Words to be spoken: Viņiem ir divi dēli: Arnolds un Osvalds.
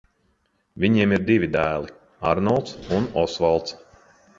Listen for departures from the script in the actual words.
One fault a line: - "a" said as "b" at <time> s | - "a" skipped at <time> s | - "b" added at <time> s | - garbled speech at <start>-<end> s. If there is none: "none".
none